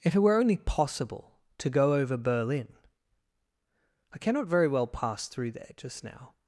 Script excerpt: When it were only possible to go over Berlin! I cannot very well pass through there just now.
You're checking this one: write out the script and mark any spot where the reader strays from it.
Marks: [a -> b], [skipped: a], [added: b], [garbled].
[When -> If] it were only possible to go over Berlin! I cannot very well pass through there just now.